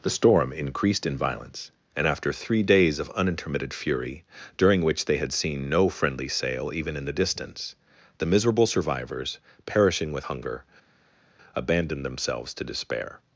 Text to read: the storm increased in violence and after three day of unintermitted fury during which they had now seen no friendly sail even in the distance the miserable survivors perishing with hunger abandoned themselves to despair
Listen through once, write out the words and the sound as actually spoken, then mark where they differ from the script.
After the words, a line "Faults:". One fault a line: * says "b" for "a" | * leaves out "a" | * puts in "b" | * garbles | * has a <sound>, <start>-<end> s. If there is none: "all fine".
the storm increased in violence and after three days of unintermitted fury during which they had seen no friendly sail even in the distance the miserable survivors perishing with hunger abandoned themselves to despair
Faults:
* says "days" for "day"
* leaves out "now"